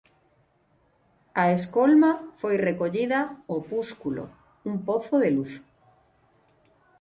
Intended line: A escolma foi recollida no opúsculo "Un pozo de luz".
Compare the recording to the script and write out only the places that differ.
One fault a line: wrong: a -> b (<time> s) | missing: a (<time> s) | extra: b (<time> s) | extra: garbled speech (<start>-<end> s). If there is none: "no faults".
missing: no (3.2 s)